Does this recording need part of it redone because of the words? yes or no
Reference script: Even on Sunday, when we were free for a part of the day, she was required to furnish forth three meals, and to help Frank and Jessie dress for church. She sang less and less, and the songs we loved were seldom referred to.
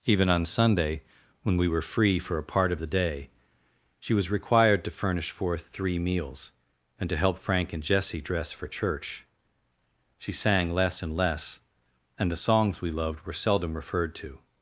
no